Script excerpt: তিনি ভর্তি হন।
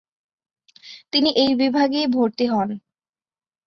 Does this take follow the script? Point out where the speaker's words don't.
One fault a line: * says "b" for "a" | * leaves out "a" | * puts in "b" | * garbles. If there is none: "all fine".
* puts in "এই বিভাগেই"